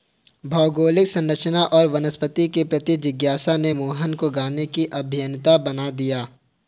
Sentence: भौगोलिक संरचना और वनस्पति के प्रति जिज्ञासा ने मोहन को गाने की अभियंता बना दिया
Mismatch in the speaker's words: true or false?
false